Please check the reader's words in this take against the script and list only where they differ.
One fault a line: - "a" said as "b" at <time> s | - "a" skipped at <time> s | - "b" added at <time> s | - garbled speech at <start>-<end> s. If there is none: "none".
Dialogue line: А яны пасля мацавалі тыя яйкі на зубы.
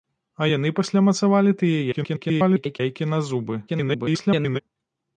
- garbled speech at 1.9-2.8 s
- garbled speech at 3.7-4.6 s